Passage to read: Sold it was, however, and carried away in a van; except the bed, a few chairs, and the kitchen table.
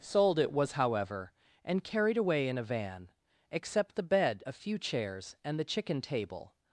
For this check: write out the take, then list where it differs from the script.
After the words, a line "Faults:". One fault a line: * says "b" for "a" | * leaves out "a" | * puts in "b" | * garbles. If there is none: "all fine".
Sold it was, however, and carried away in a van; except the bed, a few chairs, and the chicken table.
Faults:
* says "chicken" for "kitchen"